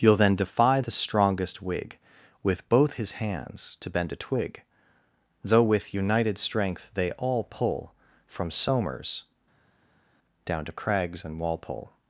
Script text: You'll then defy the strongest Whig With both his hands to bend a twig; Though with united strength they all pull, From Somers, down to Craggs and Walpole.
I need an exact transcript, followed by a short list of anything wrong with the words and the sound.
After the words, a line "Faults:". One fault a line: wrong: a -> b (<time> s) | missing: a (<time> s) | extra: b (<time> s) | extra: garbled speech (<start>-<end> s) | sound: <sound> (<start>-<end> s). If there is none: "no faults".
You'll then defy the strongest Whig With both his hands to bend a twig; Though with united strength they all pull, From Somers, down to Craggs and Walpole.
Faults:
no faults